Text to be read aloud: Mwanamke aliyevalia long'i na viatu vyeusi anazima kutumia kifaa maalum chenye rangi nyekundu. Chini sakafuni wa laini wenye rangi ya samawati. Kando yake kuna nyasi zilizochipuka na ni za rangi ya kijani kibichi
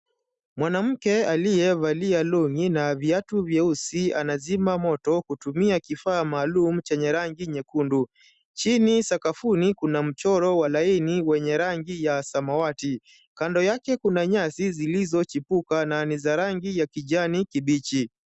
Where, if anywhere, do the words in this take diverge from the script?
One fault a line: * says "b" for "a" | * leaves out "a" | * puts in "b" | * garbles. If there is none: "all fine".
* puts in "moto"
* puts in "kuna mchoro"